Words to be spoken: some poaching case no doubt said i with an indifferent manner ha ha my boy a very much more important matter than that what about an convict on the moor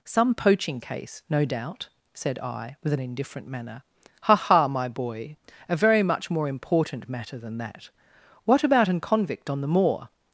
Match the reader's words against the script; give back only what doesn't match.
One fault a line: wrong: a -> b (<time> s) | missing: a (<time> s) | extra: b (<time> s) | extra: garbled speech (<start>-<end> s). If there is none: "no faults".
no faults